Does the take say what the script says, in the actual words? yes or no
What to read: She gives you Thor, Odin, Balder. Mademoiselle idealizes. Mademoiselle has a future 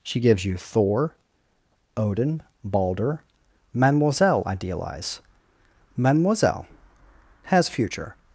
no